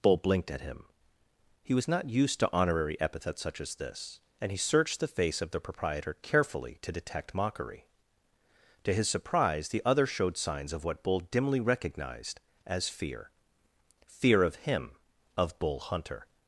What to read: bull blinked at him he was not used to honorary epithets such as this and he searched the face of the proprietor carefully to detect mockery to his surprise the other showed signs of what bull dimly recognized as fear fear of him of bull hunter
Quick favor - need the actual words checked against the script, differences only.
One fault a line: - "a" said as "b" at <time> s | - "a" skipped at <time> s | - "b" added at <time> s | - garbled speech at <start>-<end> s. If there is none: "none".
none